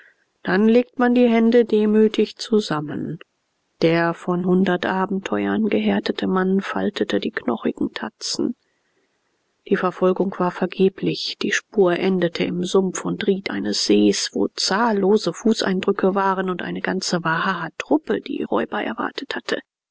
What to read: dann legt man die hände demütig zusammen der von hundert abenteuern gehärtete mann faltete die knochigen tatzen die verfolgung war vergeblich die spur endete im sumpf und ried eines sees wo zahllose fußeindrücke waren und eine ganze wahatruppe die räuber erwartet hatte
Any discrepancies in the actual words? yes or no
no